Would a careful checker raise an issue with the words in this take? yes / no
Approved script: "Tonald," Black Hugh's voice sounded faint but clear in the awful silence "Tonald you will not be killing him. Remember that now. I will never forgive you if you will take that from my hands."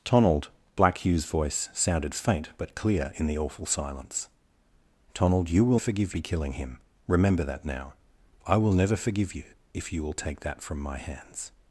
yes